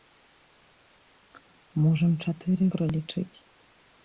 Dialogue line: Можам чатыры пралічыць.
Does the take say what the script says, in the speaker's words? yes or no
yes